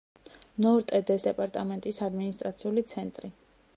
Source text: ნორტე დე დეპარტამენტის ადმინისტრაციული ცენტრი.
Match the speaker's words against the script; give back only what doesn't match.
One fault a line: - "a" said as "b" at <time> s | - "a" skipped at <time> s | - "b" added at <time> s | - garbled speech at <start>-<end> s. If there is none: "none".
none